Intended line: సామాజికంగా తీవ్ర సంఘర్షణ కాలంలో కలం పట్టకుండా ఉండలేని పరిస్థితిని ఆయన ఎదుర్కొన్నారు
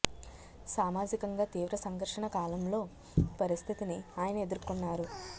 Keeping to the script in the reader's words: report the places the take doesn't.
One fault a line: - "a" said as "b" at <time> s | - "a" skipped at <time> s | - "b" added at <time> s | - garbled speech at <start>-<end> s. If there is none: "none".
- "కలం పట్టకుండా ఉండలేని" skipped at 2.8 s